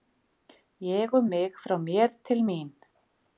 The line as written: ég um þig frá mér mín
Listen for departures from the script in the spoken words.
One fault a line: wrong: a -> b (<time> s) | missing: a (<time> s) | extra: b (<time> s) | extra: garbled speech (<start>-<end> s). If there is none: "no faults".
wrong: þig -> mig (1.3 s)
extra: til (2.3 s)